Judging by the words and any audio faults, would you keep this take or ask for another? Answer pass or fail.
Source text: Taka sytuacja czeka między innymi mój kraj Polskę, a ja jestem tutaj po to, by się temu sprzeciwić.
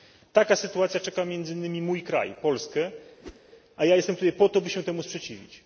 fail